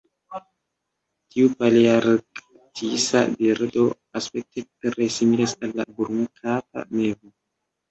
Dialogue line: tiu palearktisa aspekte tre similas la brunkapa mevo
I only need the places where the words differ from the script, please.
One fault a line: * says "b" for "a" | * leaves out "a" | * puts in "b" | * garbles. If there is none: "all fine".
* puts in "birdo"
* puts in "al"